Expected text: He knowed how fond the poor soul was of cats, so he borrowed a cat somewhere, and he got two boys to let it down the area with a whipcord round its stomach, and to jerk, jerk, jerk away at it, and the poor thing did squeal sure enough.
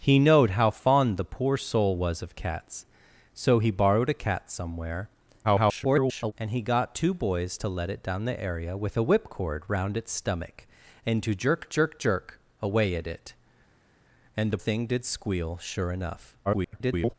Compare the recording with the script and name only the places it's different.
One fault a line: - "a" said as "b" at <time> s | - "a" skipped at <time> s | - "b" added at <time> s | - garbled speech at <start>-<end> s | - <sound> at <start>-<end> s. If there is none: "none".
- garbled speech at 5.4-6.3 s
- "poor" skipped at 14.6 s
- garbled speech at 16.5-17.1 s